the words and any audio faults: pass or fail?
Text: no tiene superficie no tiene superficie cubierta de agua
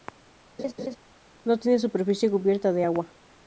fail